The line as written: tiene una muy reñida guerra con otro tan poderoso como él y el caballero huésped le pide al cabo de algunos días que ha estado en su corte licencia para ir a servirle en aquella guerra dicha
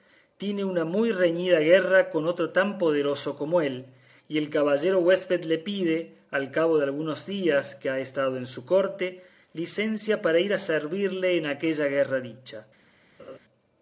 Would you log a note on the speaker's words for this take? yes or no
no